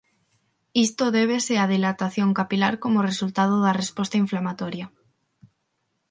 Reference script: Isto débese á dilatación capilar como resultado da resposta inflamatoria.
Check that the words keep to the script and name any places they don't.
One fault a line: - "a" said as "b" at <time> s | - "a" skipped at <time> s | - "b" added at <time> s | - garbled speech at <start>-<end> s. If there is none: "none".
none